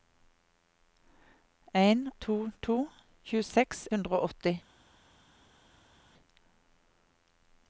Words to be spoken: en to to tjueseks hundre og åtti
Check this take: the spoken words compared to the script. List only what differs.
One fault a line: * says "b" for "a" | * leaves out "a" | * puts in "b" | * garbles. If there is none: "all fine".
all fine